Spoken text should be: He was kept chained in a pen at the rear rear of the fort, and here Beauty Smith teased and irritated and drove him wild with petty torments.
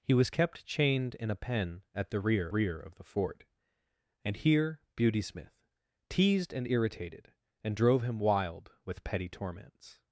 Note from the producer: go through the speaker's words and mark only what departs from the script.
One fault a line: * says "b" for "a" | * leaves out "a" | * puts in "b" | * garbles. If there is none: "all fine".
all fine